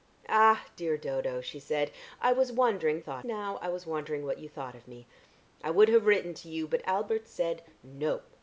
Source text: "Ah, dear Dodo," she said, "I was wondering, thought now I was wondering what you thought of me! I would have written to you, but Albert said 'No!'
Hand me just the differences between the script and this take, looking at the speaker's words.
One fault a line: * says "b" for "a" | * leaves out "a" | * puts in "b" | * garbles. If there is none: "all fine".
all fine